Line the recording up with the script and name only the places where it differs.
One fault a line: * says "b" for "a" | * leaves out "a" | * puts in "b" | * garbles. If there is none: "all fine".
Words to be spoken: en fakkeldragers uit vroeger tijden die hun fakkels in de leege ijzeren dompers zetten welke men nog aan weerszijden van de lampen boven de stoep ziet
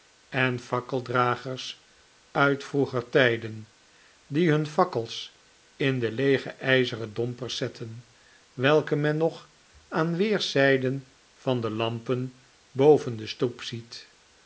all fine